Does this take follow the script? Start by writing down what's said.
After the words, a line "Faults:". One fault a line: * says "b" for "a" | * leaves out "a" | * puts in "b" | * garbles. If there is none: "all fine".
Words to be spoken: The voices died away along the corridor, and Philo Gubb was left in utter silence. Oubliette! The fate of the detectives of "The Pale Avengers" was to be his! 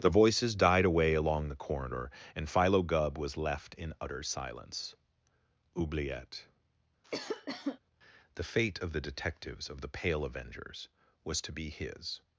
The voices died away along the corridor, and Philo Gubb was left in utter silence. Oubliette! The fate of the detectives of "The Pale Avengers" was to be his!
Faults:
all fine